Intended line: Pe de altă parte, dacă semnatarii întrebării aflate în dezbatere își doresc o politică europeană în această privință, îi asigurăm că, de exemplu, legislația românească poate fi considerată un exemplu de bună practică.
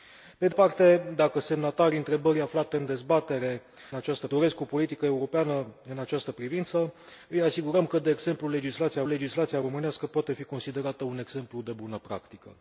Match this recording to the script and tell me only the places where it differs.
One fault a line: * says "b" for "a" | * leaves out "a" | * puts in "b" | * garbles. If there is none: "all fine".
* leaves out "altă"
* says "această" for "își"
* puts in "legislația"